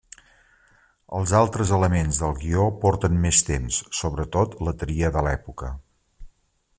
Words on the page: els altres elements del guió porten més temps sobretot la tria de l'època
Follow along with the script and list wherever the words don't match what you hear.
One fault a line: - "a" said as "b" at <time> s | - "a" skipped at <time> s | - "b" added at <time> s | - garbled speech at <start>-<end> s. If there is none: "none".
none